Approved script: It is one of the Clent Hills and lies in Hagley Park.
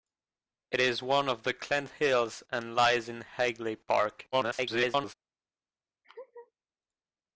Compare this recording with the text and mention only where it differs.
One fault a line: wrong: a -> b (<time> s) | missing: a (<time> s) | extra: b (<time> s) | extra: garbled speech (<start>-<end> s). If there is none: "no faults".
extra: garbled speech (4.3-5.1 s)